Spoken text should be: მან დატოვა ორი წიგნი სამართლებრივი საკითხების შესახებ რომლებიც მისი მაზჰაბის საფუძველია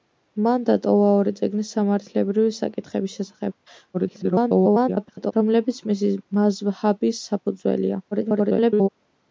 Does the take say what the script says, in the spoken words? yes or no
no